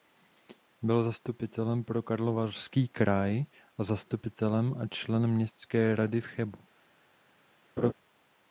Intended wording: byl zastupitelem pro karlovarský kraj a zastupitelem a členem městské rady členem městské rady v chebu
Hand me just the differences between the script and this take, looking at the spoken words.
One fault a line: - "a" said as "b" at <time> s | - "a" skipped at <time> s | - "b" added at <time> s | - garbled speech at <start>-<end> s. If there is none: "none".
- "členem městské rady" skipped at 6.2 s